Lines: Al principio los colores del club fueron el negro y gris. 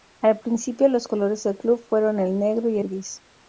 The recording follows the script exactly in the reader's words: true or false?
true